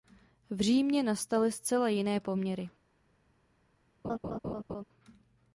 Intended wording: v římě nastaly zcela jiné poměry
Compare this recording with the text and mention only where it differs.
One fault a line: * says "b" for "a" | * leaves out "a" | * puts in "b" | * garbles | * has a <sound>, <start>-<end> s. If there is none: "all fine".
* has a laugh, 4.0-4.8 s